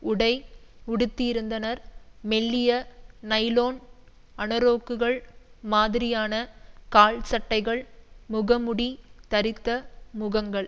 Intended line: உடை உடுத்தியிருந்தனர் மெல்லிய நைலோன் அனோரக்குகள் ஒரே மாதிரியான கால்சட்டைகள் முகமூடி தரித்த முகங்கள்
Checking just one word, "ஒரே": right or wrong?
wrong